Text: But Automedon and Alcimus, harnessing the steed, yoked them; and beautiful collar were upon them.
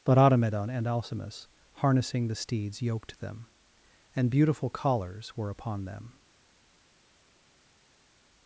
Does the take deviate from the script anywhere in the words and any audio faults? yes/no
yes